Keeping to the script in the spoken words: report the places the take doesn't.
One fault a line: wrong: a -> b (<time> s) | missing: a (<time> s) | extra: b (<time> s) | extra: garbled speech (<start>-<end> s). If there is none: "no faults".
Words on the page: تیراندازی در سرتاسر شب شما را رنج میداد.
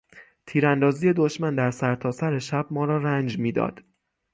extra: دشمن (1.1 s)
wrong: شما -> ما (2.7 s)